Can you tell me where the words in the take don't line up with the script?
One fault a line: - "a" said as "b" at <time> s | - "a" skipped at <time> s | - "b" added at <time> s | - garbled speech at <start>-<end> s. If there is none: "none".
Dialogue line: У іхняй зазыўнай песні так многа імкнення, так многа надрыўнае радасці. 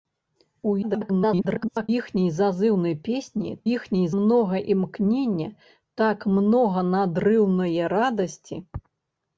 - garbled speech at 0.8-1.9 s
- "так" said as "іхняй" at 3.7 s